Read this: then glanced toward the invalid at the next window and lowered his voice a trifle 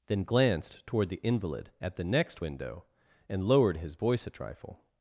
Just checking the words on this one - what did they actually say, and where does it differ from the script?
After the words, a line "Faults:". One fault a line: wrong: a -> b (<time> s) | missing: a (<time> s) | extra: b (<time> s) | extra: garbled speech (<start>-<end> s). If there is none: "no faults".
then glanced toward the invalid at the next window and lowered his voice a trifle
Faults:
no faults